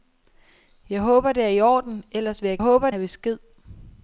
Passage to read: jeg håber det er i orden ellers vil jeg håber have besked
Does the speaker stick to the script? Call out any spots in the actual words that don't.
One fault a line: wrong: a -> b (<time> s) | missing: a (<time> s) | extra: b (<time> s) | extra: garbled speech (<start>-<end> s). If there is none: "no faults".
no faults